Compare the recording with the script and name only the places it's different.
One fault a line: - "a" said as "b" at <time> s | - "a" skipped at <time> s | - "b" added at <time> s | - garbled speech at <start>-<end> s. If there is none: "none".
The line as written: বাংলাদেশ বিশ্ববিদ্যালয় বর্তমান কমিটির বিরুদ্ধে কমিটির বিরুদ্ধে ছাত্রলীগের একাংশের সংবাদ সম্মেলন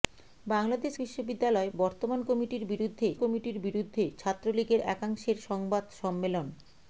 none